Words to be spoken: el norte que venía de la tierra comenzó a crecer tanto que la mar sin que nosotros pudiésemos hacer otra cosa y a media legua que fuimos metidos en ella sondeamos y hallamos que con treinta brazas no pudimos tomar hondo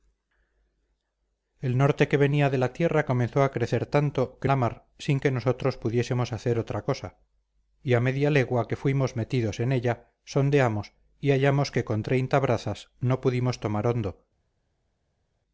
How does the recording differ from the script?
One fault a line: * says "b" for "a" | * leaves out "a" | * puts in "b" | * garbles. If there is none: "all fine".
all fine